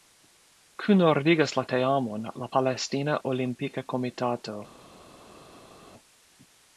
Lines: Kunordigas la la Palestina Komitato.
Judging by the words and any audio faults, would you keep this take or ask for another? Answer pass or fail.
fail